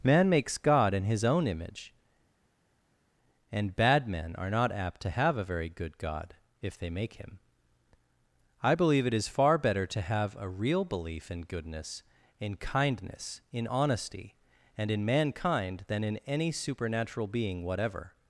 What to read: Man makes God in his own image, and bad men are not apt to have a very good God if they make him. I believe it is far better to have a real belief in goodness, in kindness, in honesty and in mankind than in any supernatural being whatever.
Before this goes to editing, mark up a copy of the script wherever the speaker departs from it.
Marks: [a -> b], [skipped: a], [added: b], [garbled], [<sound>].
Man makes God in his own image, and bad men are not apt to have a very good God if they make him. I believe it is far better to have a real belief in goodness, in kindness, in honesty and in mankind than in any supernatural being whatever.